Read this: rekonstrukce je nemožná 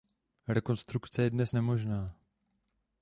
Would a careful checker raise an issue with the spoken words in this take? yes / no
yes